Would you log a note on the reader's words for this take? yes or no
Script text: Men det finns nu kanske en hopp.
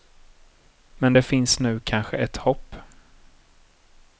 yes